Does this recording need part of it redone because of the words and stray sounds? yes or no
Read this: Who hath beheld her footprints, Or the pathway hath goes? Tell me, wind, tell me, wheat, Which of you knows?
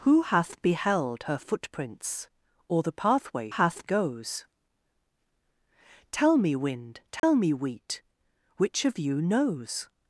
yes